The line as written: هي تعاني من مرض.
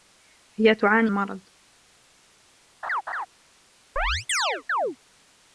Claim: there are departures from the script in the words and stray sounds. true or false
true